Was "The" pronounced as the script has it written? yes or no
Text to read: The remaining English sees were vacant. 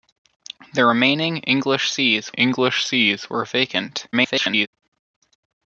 yes